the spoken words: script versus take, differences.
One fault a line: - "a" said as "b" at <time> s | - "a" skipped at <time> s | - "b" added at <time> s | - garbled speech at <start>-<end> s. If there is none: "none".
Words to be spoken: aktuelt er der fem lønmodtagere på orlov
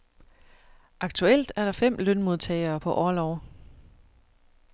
none